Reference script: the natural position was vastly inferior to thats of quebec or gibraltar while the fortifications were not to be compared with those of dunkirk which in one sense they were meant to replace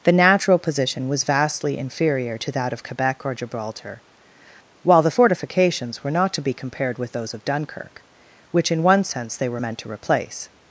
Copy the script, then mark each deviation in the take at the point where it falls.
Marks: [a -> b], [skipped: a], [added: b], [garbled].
the natural position was vastly inferior to [thats -> that] of quebec or gibraltar while the fortifications were not to be compared with those of dunkirk which in one sense they were meant to replace